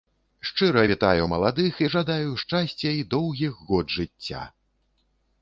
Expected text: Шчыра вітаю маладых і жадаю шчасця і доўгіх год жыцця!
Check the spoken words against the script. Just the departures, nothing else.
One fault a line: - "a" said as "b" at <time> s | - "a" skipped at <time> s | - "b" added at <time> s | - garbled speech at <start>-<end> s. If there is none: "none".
none